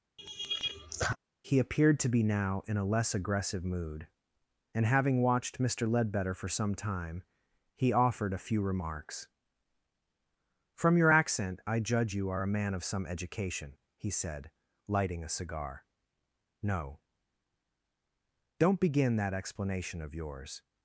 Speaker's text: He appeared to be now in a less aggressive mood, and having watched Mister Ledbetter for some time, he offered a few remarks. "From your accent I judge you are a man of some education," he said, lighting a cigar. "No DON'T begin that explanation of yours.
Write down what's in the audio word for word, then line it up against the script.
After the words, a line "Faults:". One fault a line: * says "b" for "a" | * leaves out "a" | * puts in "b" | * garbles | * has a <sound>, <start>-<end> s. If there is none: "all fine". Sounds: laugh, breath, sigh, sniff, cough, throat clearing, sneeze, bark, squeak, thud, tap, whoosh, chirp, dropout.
He appeared to be now in a less aggressive mood, and having watched Mister Ledbetter for some time, he offered a few remarks. "From your accent I judge you are a man of some education," he said, lighting a cigar. "No DON'T begin that explanation of yours.
Faults:
* has a laugh, 0.2-1.2 s